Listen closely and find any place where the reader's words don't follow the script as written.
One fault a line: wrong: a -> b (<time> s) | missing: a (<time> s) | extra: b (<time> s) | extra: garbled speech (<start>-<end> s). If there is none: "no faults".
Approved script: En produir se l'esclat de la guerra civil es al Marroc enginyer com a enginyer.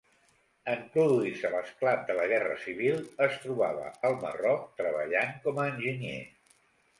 extra: trobava (3.5 s)
wrong: enginyer -> treballant (4.8 s)